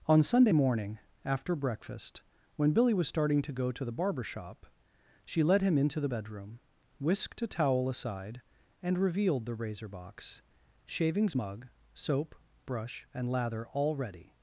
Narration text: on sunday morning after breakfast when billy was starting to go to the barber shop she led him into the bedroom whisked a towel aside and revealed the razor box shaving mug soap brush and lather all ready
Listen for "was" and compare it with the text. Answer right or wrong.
right